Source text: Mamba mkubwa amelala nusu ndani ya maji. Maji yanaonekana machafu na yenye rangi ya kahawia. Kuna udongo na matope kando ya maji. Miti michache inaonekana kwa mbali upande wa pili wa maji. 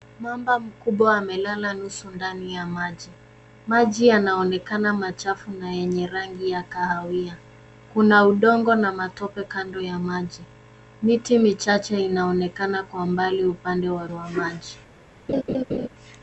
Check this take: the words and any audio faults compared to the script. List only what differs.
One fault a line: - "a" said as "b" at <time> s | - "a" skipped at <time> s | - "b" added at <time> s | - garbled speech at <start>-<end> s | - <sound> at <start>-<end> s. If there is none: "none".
- "pili" skipped at 14.1 s
- laugh at 15.3-15.9 s